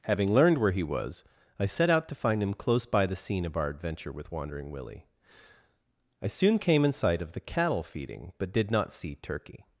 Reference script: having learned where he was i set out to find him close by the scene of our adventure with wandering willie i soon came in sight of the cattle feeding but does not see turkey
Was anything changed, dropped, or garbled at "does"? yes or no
yes